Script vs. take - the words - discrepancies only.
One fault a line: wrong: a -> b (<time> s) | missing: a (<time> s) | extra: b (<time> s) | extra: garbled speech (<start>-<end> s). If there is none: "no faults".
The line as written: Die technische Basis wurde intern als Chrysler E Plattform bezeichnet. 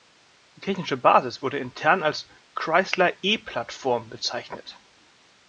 no faults